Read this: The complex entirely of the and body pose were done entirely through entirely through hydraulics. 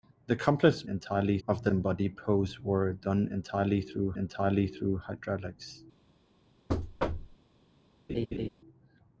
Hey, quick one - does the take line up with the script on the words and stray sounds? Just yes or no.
no